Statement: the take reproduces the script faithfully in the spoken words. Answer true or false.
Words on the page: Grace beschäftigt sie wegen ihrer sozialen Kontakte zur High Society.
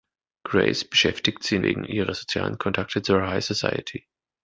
true